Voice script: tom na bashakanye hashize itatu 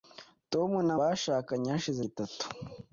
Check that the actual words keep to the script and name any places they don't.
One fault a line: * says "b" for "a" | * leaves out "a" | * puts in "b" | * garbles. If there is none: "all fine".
all fine